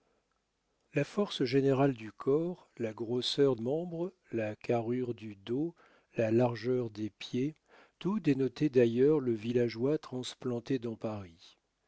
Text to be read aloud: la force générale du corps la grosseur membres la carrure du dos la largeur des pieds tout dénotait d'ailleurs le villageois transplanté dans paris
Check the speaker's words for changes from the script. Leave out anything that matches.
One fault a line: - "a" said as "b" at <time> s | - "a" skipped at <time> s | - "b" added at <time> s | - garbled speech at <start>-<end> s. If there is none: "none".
none